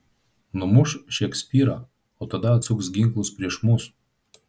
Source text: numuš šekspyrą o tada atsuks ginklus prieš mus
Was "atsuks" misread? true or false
false